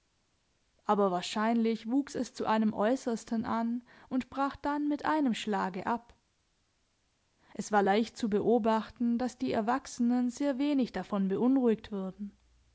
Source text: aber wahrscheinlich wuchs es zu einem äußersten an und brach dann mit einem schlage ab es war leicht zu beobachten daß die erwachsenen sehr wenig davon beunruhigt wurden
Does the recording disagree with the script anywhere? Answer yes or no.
no